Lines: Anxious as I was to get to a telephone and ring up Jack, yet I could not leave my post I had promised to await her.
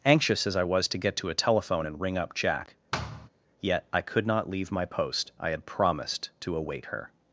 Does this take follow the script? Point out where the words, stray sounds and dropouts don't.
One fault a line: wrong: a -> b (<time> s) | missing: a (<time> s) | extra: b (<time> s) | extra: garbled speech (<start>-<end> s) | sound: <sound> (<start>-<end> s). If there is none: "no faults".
sound: thud (2.9-3.3 s)